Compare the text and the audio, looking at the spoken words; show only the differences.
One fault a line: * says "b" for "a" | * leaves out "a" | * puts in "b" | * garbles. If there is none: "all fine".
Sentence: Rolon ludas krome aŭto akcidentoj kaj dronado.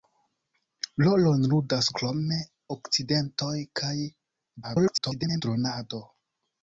* leaves out "aŭto"
* garbles